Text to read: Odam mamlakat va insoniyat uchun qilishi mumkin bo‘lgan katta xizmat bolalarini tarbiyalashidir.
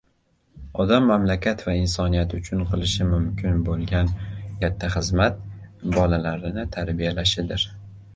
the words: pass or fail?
pass